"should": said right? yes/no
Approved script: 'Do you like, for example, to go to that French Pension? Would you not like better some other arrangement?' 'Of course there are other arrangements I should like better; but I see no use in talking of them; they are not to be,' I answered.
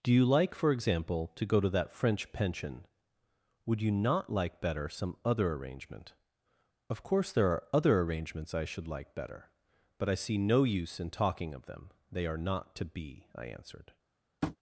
yes